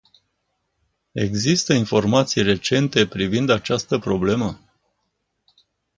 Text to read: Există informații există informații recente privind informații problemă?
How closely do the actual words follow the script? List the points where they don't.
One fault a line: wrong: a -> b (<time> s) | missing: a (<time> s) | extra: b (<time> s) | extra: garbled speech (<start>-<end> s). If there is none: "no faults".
missing: există informații (2.4 s)
wrong: informații -> această (3.5 s)